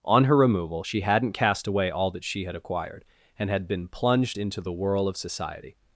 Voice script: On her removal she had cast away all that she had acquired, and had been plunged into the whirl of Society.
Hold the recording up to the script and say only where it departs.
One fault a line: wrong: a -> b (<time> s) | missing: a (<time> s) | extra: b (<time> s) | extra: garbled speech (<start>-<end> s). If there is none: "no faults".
wrong: had -> hadn't (1.0 s)